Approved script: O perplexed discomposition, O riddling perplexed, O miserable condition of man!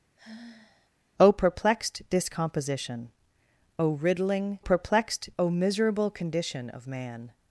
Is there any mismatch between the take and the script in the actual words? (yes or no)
no